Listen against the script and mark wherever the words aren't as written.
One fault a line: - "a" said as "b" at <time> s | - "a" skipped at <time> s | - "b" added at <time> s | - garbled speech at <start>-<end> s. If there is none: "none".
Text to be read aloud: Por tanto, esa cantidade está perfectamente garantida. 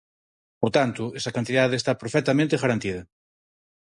none